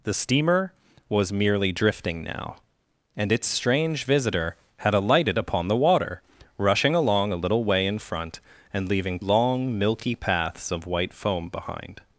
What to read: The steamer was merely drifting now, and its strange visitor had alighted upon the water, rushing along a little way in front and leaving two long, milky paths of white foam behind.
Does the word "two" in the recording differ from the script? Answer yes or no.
yes